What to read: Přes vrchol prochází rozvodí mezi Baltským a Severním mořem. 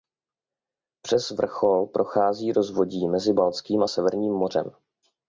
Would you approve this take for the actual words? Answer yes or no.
yes